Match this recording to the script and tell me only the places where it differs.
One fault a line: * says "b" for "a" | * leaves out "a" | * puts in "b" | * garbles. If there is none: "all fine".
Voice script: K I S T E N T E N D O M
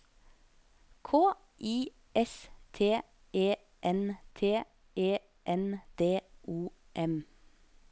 all fine